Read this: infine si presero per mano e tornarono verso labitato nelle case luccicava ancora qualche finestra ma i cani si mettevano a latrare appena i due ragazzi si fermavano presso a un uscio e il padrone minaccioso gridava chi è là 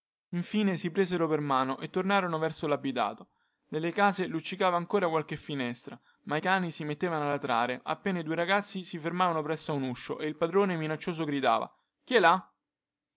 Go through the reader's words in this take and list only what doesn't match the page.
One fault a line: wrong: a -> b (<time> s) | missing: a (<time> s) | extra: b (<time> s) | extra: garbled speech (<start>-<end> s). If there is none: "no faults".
no faults